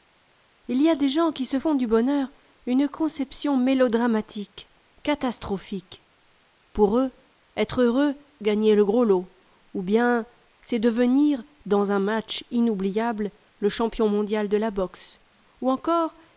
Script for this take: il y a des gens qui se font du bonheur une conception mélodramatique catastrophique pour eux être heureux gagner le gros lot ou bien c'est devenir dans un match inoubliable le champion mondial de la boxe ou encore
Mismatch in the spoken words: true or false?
false